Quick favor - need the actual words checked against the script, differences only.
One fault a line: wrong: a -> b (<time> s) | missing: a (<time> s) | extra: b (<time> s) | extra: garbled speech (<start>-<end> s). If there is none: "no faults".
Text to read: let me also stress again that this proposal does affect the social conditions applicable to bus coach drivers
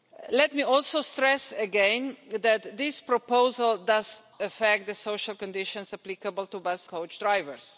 no faults